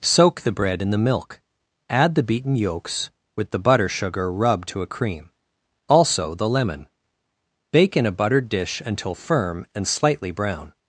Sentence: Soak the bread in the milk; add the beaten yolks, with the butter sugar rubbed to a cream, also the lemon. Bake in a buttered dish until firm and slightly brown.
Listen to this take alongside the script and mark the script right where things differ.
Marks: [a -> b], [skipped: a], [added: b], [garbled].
Soak the bread in the milk; add the beaten yolks, with the butter sugar rubbed to a cream, also the lemon. Bake in a buttered dish until firm and slightly brown.